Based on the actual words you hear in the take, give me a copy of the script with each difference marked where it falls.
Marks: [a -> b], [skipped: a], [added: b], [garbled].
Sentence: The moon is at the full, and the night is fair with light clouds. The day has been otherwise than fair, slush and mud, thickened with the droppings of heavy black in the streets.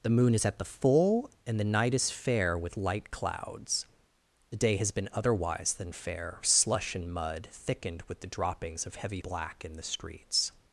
The moon is at the full, and the night is fair with light clouds. The day has been otherwise than fair, slush and mud, thickened with the droppings of heavy black in the streets.